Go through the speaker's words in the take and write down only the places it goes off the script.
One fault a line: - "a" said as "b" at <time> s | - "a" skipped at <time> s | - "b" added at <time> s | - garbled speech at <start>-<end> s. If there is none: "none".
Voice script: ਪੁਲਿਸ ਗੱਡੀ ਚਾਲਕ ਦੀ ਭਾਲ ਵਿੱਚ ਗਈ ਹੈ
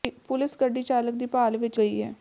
none